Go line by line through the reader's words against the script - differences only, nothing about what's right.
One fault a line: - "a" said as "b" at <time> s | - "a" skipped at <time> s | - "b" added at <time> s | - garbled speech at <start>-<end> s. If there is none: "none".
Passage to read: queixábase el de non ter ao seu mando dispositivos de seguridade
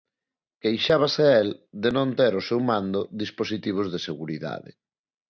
none